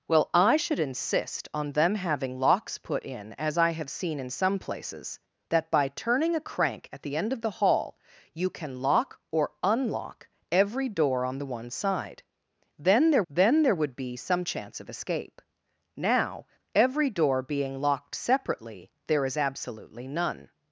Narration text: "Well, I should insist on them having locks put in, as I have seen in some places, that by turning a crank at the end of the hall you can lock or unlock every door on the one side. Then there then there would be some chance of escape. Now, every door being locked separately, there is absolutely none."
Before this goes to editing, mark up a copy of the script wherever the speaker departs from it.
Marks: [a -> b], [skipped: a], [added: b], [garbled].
"Well, I should insist on them having locks put in, as I have seen in some places, that by turning a crank at the end of the hall you can lock or unlock every door on the one side. Then there then there would be some chance of escape. Now, every door being locked separately, there is absolutely none."